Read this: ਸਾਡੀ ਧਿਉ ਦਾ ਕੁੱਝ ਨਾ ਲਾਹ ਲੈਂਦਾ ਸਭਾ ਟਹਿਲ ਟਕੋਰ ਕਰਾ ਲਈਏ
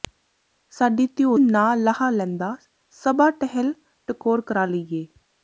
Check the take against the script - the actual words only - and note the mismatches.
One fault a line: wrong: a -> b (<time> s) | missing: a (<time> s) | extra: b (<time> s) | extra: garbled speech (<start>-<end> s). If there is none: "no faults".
missing: ਦਾ ਕੁੱਝ (1.4 s)